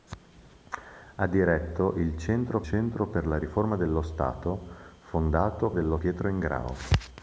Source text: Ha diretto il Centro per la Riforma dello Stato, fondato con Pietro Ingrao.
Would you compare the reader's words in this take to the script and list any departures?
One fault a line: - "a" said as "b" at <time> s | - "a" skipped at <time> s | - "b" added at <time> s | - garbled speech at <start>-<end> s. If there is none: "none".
- "Centro" added at 2.6 s
- "con" said as "dello" at 5.7 s